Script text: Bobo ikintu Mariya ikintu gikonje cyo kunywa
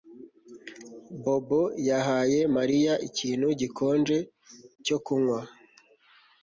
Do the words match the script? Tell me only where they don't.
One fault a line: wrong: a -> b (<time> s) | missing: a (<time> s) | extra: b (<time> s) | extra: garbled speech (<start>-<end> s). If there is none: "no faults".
wrong: ikintu -> yahaye (1.9 s)